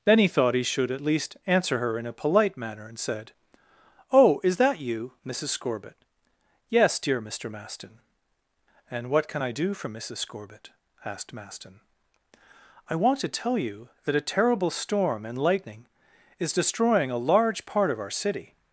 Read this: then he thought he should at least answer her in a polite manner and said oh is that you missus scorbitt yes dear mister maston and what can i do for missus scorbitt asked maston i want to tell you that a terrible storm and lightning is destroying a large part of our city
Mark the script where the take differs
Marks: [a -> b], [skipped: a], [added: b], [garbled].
then he thought he should at least answer her in a polite manner and said oh is that you missus scorbitt yes dear mister maston and what can i do for missus scorbitt asked maston i want to tell you that a terrible storm and lightning is destroying a large part of our city